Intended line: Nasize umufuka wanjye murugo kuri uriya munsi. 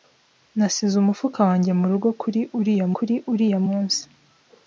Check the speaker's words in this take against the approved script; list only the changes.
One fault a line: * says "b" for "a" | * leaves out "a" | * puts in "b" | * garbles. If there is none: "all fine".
* puts in "kuri uriya"